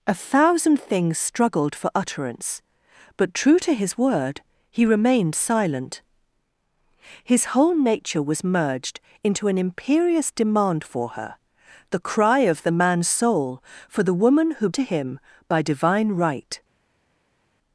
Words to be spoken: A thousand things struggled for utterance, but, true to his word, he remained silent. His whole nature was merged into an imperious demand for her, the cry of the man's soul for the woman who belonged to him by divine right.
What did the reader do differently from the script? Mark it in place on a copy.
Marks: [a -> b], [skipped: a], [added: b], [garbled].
A thousand things struggled for utterance, but, true to his word, he remained silent. His whole nature was merged into an imperious demand for her, the cry of the man's soul for the woman who [skipped: belonged] to him by divine right.